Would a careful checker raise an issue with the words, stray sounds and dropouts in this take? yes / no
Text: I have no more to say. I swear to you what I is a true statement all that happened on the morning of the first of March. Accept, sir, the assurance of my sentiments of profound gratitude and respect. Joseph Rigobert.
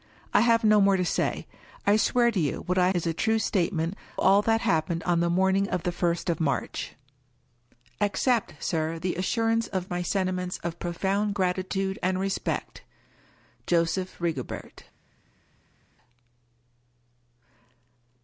no